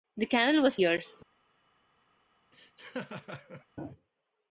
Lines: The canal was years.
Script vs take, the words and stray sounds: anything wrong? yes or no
yes